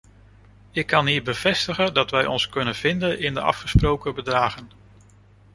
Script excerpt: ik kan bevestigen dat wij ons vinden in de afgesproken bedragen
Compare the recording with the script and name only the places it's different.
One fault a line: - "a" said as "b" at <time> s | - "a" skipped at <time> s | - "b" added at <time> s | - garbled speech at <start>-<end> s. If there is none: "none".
- "hier" added at 1.1 s
- "kunnen" added at 2.5 s